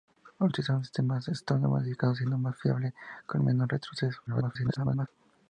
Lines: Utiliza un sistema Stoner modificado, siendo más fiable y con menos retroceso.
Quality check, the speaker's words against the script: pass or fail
fail